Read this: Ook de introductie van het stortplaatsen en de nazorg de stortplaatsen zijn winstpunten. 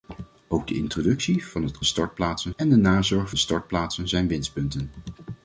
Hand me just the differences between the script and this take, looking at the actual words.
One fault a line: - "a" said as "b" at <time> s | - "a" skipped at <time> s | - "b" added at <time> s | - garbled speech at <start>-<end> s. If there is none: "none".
none